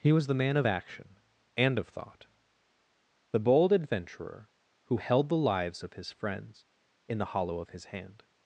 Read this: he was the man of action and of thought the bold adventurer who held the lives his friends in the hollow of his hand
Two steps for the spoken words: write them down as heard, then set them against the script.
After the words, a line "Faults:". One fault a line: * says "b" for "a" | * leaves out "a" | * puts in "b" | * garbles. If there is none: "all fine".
he was the man of action and of thought the bold adventurer who held the lives of his friends in the hollow of his hand
Faults:
* puts in "of"